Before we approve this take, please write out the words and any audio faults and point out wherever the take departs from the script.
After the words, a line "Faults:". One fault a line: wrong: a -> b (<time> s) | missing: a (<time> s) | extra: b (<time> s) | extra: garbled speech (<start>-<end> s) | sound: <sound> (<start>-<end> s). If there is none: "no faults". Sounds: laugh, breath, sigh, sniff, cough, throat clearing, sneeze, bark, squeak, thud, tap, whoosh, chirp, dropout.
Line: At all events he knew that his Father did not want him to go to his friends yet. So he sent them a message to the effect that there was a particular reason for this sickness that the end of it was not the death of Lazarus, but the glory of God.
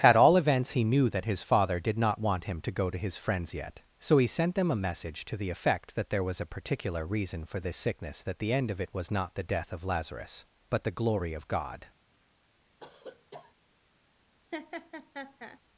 At all events he knew that his Father did not want him to go to his friends yet. So he sent them a message to the effect that there was a particular reason for this sickness that the end of it was not the death of Lazarus, but the glory of God.
Faults:
sound: cough (12.8-13.5 s)
sound: laugh (14.5-15.6 s)